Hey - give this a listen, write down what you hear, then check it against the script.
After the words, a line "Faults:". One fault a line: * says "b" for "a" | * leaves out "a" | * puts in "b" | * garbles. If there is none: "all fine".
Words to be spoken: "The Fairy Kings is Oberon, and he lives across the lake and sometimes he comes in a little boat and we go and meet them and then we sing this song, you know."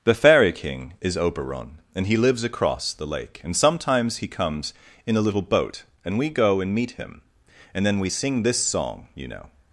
"The Fairy King is Oberon, and he lives across the lake and sometimes he comes in a little boat and we go and meet him and then we sing this song, you know."
Faults:
* says "King" for "Kings"
* says "him" for "them"